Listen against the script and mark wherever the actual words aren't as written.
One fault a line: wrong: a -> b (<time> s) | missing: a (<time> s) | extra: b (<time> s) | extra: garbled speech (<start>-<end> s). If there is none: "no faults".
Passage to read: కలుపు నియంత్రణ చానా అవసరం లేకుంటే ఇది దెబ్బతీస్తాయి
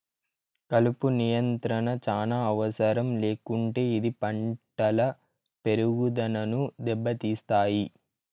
extra: పంటల పెరుగుదనను (4.2 s)